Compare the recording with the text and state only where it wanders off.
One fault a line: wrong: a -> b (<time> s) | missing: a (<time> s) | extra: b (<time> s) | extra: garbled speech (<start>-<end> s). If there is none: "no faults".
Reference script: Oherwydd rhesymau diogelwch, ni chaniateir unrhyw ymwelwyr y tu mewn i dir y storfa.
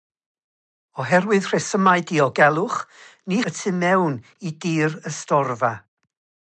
missing: chaniateir unrhyw ymwelwyr (3.4 s)